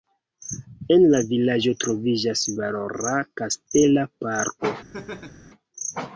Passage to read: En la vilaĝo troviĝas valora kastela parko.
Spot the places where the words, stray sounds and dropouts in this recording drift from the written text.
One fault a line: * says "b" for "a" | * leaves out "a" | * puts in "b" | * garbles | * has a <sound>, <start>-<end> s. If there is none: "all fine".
* has a laugh, 4.9-5.5 s